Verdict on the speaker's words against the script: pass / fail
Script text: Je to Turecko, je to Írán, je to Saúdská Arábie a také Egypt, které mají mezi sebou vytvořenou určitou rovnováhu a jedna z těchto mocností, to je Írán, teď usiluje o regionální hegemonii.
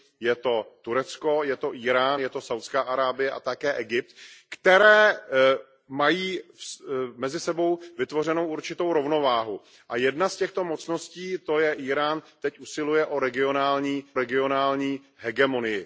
fail